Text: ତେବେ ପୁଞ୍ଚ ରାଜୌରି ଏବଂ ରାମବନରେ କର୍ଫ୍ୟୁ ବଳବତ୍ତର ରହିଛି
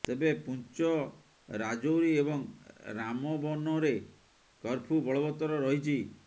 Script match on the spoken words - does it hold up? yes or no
yes